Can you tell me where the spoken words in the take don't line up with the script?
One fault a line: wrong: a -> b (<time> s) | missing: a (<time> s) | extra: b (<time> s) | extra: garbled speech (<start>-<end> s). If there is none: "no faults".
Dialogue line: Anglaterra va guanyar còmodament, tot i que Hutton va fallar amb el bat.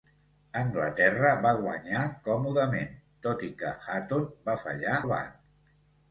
missing: amb (5.0 s)